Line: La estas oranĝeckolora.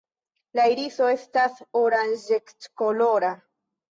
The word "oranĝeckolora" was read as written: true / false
true